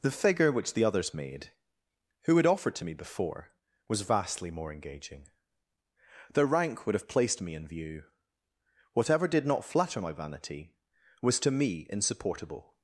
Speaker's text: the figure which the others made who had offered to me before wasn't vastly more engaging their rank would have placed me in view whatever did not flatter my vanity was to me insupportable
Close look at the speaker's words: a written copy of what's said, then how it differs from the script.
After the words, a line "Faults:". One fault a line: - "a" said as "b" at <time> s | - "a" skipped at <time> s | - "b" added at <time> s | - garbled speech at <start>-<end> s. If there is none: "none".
the figure which the others made who had offered to me before was vastly more engaging their rank would have placed me in view whatever did not flatter my vanity was to me insupportable
Faults:
- "wasn't" said as "was" at 3.9 s